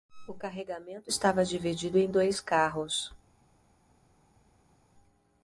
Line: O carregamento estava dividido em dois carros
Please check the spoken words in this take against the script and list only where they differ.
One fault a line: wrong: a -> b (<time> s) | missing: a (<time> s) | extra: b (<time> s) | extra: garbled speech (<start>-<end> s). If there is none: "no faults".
no faults